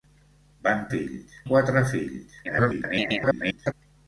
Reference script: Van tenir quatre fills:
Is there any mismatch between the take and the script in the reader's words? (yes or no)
yes